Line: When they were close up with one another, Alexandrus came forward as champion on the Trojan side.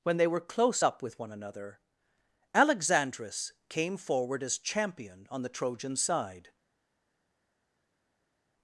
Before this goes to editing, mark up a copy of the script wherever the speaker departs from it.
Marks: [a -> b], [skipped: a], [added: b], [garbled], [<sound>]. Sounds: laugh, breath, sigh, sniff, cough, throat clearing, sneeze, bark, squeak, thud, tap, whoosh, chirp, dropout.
When they were close up with one another, Alexandrus came forward as champion on the Trojan side.